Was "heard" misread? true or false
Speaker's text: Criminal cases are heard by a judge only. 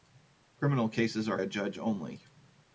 true